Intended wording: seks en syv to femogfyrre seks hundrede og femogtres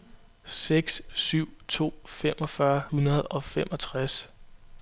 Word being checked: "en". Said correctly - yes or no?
no